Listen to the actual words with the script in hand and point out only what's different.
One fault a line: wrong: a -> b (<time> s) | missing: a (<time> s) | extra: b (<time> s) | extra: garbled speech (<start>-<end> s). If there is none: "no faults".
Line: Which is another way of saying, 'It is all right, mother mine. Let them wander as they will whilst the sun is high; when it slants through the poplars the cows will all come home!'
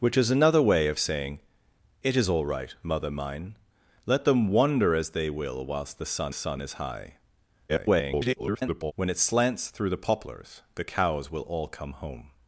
extra: sun (6.3 s)
extra: garbled speech (7.7-8.9 s)